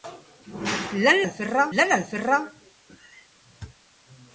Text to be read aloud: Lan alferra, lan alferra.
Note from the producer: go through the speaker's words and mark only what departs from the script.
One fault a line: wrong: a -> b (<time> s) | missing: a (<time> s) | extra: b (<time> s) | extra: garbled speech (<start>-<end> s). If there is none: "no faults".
no faults